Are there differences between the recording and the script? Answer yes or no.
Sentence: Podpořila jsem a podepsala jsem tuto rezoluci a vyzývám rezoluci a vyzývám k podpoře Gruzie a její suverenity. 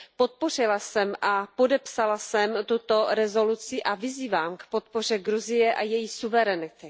yes